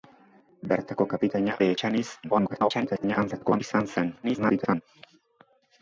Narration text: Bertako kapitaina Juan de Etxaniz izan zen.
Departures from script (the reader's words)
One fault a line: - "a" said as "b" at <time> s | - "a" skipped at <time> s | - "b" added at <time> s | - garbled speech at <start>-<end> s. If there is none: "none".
- "Juan" skipped at 1.6 s
- garbled speech at 2.2-3.6 s
- garbled speech at 4.2-4.8 s